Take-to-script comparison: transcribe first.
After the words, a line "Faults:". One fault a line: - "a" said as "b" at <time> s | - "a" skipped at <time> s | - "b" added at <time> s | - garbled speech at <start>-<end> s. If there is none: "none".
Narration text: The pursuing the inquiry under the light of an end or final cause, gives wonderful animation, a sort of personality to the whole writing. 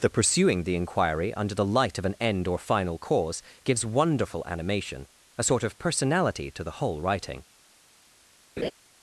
The pursuing the inquiry under the light of an end or final cause, gives wonderful animation, a sort of personality to the whole writing.
Faults:
none